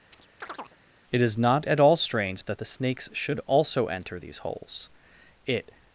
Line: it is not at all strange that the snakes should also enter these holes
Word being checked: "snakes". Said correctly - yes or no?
yes